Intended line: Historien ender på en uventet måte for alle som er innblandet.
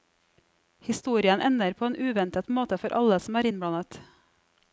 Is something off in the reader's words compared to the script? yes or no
no